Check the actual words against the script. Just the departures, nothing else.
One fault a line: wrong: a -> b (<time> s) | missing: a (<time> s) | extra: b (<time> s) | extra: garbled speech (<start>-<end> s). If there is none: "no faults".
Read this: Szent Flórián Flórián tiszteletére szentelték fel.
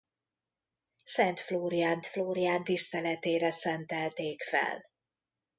no faults